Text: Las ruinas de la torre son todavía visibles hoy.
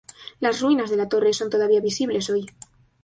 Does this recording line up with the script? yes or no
yes